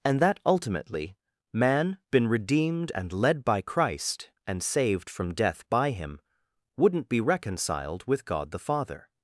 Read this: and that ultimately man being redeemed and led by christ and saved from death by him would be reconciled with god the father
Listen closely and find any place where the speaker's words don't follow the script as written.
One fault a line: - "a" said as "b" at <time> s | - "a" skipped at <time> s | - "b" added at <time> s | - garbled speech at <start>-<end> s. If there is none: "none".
- "being" said as "been" at 2.1 s
- "would" said as "wouldn't" at 6.8 s